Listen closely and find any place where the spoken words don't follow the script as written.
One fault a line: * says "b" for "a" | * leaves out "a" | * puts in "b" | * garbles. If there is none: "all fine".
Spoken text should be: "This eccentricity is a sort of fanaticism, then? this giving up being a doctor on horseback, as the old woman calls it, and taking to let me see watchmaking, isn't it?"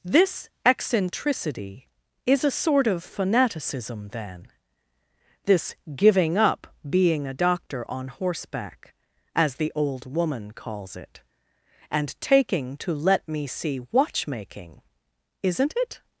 all fine